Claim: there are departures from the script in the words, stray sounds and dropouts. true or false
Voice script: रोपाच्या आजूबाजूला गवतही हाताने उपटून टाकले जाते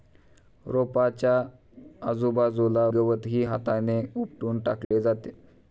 true